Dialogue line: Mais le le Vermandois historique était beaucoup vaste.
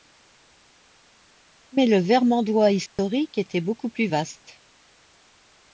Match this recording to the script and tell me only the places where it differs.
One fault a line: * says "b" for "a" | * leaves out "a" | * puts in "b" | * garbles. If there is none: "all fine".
* leaves out "le"
* puts in "plus"